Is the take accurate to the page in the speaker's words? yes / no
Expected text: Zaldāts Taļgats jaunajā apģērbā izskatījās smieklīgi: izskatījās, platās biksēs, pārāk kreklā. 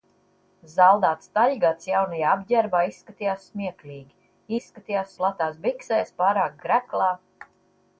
yes